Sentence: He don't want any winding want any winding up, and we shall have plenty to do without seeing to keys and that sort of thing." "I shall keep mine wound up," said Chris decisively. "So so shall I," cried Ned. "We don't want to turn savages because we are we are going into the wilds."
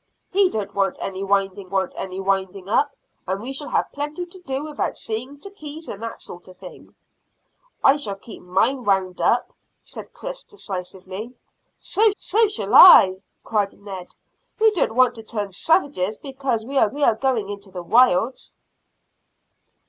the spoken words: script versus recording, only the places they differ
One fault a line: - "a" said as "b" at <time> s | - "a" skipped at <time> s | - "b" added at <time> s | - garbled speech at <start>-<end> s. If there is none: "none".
none